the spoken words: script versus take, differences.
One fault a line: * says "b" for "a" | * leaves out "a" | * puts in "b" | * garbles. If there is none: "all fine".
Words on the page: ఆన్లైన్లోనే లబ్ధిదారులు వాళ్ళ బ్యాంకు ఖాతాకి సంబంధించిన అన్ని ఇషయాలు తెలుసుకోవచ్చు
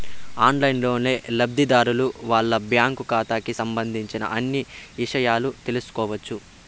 all fine